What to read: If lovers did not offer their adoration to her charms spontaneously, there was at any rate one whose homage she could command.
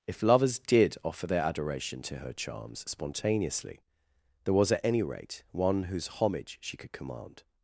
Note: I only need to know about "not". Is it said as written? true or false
false